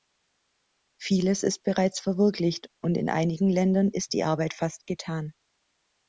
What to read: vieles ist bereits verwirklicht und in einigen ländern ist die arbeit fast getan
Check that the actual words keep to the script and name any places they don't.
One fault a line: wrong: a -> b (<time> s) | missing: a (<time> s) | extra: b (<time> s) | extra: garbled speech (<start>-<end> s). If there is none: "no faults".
no faults